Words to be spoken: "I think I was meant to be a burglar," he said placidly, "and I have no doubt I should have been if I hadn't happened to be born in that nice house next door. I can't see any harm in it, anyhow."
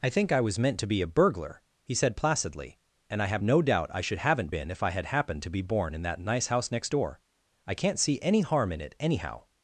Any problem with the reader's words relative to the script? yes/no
yes